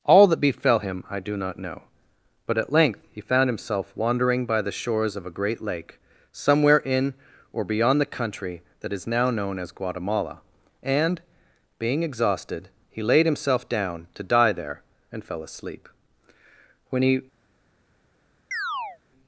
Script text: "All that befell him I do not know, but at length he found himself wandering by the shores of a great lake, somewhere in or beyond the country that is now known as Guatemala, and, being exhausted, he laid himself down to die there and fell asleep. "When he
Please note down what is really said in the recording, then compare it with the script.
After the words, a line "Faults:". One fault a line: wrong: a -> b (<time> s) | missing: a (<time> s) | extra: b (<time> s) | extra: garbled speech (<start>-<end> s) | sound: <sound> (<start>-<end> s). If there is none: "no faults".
"All that befell him I do not know, but at length he found himself wandering by the shores of a great lake, somewhere in or beyond the country that is now known as Guatemala, and, being exhausted, he laid himself down to die there and fell asleep. "When he
Faults:
sound: chirp (18.5-19.0 s)